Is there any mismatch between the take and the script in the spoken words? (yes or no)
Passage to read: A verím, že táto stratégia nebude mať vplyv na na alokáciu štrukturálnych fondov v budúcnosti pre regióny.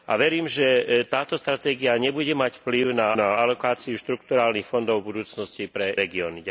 no